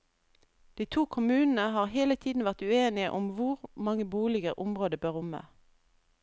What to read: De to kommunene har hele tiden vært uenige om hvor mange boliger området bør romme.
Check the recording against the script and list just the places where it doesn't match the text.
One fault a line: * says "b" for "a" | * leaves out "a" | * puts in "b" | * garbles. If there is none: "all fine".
all fine